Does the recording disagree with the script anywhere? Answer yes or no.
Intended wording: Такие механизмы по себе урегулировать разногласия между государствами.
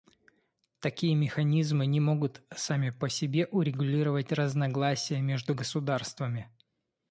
yes